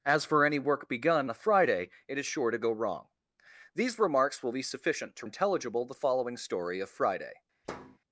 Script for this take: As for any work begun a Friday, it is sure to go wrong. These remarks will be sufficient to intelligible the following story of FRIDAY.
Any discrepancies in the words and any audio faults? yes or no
yes